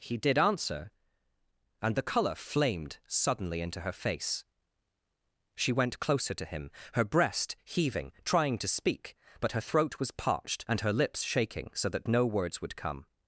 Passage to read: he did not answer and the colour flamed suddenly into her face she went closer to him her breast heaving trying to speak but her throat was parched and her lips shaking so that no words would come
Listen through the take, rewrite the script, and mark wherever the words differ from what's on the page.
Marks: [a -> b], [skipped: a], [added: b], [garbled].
he did [skipped: not] answer and the colour flamed suddenly into her face she went closer to him her breast heaving trying to speak but her throat was parched and her lips shaking so that no words would come